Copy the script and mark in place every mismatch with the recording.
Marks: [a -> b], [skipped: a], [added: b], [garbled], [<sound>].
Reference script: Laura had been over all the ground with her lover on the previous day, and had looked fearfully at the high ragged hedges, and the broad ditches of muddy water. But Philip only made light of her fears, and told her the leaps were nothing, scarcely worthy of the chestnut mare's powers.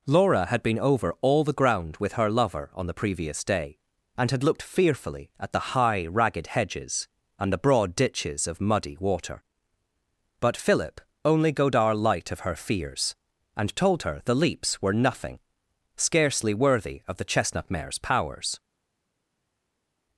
Laura had been over all the ground with her lover on the previous day, and had looked fearfully at the high ragged hedges, and the broad ditches of muddy water. But Philip only [made -> godar] light of her fears, and told her the leaps were nothing, scarcely worthy of the chestnut mare's powers.